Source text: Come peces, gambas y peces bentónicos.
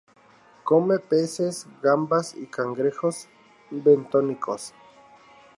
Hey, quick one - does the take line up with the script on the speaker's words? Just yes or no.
no